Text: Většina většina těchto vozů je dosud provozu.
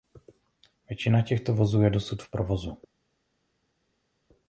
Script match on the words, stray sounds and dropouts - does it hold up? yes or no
no